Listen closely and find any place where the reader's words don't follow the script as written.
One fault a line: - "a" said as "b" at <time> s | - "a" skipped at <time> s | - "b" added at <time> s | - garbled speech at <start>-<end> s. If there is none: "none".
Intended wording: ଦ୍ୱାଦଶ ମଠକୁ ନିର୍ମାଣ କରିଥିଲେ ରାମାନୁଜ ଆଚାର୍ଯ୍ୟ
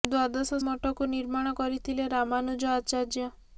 none